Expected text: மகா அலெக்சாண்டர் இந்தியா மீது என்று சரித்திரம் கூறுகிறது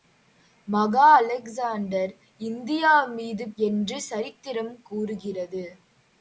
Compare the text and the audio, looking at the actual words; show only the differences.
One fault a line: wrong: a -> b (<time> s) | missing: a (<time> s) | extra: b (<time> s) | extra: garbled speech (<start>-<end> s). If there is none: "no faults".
no faults